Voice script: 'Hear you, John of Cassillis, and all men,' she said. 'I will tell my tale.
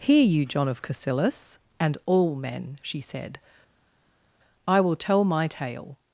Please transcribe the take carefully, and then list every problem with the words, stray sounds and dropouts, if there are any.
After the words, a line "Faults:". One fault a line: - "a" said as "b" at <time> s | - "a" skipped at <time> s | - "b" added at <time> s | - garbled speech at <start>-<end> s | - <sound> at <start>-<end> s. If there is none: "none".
'Hear you, John of Cassillis, and all men,' she said. 'I will tell my tale.
Faults:
none